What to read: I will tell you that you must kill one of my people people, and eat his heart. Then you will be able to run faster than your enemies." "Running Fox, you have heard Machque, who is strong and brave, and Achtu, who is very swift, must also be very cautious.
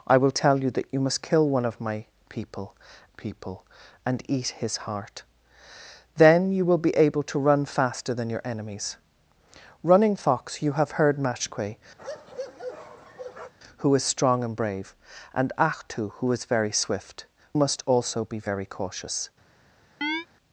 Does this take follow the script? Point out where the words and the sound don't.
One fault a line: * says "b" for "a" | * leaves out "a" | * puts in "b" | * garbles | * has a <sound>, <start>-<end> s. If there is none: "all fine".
* has a bark, 12.0-13.5 s
* has a chirp, 20.0-20.3 s